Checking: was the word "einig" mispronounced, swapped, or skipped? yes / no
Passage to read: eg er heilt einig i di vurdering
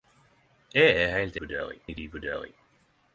yes